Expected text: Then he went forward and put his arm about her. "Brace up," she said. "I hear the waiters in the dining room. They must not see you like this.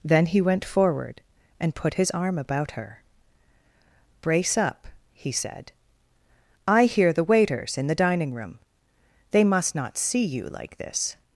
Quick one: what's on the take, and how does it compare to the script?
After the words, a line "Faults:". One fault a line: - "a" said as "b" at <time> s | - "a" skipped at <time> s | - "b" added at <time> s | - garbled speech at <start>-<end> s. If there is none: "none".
Then he went forward and put his arm about her. "Brace up," he said. "I hear the waiters in the dining room. They must not see you like this.
Faults:
- "she" said as "he" at 5.1 s